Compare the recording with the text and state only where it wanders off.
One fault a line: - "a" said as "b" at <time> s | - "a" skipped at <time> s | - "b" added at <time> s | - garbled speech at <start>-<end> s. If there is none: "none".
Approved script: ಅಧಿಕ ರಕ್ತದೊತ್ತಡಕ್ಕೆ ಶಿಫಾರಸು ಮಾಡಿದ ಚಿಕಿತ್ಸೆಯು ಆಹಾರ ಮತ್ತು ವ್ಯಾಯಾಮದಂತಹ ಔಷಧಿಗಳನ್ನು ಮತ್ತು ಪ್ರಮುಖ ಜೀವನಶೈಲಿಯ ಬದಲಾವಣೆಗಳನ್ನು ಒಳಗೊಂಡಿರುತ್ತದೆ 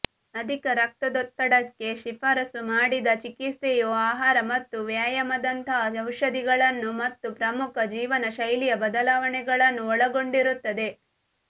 none